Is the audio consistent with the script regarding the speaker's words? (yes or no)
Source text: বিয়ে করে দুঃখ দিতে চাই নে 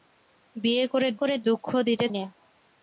no